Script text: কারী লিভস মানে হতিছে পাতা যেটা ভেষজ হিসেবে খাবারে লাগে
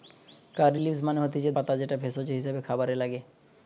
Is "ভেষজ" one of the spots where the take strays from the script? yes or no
no